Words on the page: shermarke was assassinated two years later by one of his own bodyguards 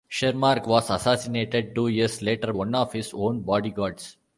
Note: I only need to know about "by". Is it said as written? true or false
false